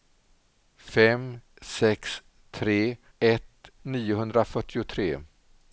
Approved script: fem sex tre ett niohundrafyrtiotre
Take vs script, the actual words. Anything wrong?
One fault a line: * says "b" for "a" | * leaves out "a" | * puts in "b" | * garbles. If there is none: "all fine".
all fine